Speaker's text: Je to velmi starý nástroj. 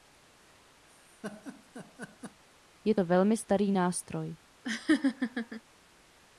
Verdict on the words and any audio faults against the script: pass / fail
fail